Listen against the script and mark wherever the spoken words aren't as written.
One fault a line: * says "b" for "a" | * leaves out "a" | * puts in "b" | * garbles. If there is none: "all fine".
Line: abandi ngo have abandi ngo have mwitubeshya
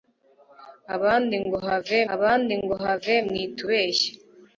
all fine